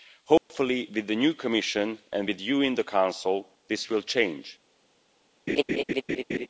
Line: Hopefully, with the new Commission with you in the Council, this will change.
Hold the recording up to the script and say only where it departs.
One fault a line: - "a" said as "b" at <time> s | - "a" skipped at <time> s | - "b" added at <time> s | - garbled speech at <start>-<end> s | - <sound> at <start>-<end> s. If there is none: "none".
- dropout at 0.4-0.5 s
- "and" added at 2.1 s
- laugh at 5.5-6.5 s